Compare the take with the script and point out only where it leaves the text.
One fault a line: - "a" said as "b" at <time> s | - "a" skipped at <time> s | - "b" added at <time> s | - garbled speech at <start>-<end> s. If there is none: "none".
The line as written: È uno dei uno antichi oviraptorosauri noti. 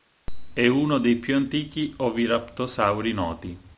- "uno" said as "più" at 1.2 s